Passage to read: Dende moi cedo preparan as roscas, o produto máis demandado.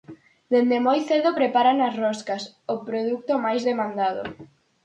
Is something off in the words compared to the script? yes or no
no